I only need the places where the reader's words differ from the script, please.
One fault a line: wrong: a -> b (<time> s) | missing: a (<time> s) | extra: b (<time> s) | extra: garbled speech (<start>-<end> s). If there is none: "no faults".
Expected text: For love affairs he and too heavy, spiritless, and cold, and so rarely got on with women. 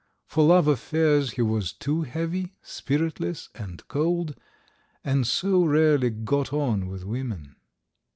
wrong: and -> was (1.4 s)